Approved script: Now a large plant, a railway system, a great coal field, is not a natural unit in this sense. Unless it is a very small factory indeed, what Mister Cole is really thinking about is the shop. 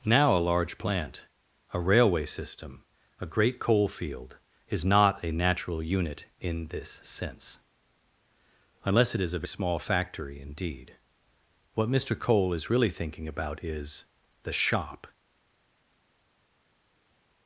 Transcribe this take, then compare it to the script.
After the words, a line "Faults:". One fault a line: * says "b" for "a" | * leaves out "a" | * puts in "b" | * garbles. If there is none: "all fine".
Now a large plant, a railway system, a great coal field, is not a natural unit in this sense. Unless it is a small factory indeed, what Mister Cole is really thinking about is the shop.
Faults:
* leaves out "very"